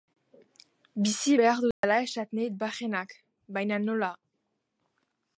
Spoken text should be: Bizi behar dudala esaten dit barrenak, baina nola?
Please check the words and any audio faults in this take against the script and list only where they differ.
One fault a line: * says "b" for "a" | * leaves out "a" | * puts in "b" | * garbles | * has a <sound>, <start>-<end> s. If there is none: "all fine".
* has a dropout, 1.7-1.8 s